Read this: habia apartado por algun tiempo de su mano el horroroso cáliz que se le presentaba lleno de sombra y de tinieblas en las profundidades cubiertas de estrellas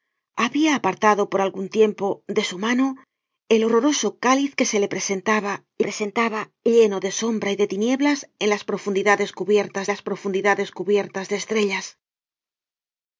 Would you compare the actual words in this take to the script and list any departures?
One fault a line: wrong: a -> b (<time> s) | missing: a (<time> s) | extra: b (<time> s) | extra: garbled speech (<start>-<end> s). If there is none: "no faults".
extra: presentaba (5.8 s)
extra: las profundidades cubiertas (9.9 s)